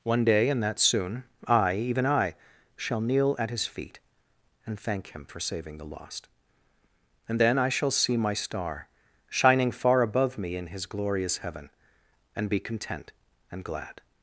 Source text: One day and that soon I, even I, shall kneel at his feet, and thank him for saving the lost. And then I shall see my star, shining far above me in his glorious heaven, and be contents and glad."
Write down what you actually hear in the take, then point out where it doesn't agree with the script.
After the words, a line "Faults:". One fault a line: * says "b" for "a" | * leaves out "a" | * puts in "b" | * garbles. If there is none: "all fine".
One day and that soon I, even I, shall kneel at his feet, and thank him for saving the lost. And then I shall see my star, shining far above me in his glorious heaven, and be content and glad."
Faults:
* says "content" for "contents"